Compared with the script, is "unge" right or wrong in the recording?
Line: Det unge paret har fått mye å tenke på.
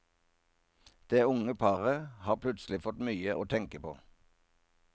right